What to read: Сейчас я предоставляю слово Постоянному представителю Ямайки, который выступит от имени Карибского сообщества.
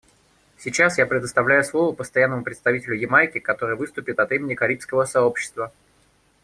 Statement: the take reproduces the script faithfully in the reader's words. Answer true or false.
true